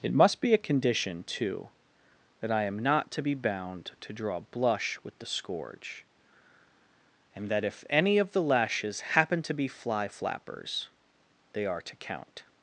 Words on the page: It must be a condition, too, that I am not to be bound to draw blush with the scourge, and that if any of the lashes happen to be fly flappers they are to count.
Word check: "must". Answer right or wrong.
right